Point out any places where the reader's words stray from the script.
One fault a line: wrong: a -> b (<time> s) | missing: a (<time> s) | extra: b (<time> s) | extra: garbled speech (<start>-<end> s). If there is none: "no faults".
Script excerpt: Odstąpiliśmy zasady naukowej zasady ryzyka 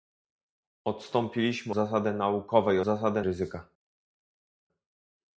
no faults